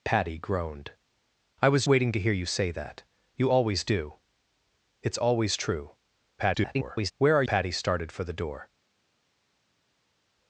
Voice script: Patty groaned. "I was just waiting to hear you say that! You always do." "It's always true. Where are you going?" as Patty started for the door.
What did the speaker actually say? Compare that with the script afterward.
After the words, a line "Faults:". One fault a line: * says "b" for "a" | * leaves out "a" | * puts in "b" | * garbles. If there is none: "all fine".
Patty groaned. "I was waiting to hear you say that! You always do." "It's always true. [garbled] Where are Patty started for the door.
Faults:
* leaves out "just"
* garbles
* leaves out "you going as"